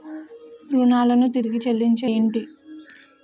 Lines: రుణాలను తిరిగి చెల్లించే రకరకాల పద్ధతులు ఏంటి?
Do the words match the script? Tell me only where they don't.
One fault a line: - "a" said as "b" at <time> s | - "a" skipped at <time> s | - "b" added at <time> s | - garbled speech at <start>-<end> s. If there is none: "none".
- "రకరకాల పద్ధతులు" skipped at 2.1 s